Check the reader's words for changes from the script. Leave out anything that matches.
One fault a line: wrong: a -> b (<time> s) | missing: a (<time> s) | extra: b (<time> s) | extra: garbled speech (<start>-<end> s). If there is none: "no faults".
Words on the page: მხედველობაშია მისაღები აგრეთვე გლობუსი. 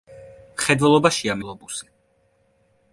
missing: მისაღები აგრეთვე (1.4 s)